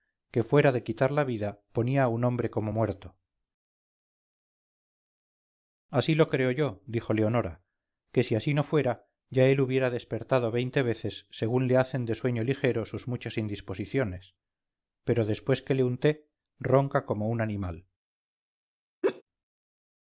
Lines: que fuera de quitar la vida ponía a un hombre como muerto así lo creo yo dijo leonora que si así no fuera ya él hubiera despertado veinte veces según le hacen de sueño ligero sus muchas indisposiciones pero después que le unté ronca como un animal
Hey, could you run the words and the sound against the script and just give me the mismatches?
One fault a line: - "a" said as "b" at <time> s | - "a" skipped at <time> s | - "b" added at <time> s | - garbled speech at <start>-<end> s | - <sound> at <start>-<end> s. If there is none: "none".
- laugh at 19.0-19.2 s